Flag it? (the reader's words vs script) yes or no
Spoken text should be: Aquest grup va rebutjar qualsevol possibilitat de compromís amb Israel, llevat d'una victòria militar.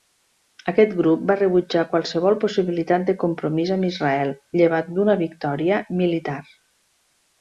no